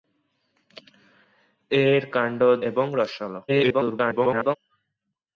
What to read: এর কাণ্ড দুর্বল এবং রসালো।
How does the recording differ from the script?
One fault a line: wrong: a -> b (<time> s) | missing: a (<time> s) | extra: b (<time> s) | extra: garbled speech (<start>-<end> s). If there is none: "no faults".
missing: দুর্বল (2.4 s)
extra: garbled speech (3.5-4.6 s)